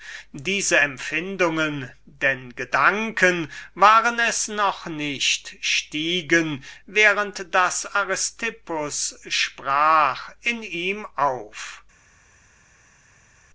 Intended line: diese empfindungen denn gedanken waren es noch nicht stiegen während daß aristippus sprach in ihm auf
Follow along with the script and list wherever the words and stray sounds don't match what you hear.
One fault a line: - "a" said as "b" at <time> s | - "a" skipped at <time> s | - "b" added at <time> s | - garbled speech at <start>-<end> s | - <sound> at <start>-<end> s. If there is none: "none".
none